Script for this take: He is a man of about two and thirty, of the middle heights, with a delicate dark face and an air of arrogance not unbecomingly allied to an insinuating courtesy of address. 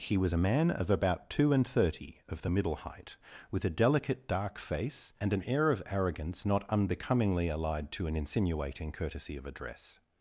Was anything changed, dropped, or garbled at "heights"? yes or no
yes